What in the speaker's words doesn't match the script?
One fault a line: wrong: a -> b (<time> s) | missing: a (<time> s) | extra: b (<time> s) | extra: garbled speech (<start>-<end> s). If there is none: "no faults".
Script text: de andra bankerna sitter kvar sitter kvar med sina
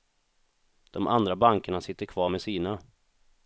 missing: sitter kvar (2.3 s)